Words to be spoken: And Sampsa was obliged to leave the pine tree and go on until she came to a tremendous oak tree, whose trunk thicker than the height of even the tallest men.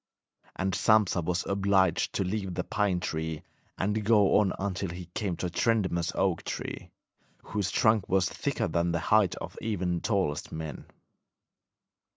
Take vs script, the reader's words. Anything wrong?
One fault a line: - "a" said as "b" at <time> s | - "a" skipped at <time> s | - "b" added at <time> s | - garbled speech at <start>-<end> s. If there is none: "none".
- "she" said as "he" at 4.9 s
- "was" added at 8.1 s